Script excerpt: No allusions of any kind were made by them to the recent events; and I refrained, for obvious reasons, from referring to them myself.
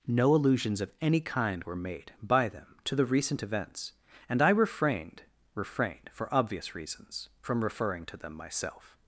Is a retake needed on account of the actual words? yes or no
yes